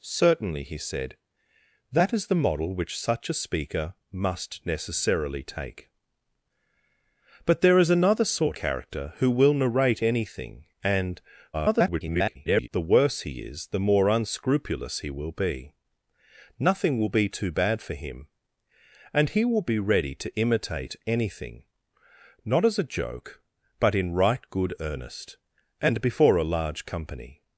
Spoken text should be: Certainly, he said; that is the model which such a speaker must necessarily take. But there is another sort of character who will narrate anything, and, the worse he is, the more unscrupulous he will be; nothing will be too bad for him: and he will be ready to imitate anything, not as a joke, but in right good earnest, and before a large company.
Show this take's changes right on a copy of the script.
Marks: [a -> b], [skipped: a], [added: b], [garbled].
Certainly, he said; that is the model which such a speaker must necessarily take. But there is another sort [skipped: of] character who will narrate anything, and, [garbled] the worse he is, the more unscrupulous he will be; nothing will be too bad for him: and he will be ready to imitate anything, not as a joke, but in right good earnest, and before a large company.